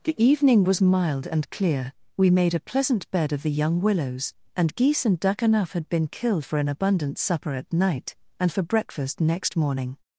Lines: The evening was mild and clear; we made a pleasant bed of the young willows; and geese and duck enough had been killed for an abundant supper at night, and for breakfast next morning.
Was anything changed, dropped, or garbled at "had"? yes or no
no